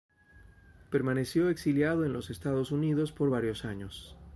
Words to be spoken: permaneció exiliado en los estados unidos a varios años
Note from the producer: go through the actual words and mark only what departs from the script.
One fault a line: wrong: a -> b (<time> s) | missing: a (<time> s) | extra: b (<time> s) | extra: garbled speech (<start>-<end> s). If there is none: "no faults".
wrong: a -> por (3.1 s)